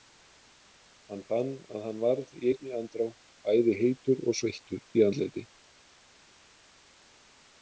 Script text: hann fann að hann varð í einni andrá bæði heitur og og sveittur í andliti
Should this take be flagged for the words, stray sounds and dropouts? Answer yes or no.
yes